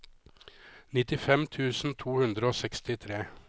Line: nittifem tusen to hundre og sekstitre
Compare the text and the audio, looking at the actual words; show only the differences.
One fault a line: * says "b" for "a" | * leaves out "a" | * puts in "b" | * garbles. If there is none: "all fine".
all fine